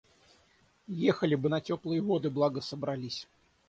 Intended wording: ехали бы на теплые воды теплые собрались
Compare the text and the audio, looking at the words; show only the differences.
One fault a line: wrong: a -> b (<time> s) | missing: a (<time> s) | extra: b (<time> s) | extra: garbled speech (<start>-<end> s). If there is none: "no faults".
wrong: теплые -> благо (2.3 s)